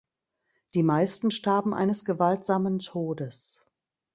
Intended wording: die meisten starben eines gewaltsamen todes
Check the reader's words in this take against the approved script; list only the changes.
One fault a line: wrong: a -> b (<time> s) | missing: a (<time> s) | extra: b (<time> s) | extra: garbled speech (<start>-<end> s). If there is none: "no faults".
no faults